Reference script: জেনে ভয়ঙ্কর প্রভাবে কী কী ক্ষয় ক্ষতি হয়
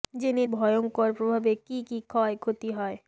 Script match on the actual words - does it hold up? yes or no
yes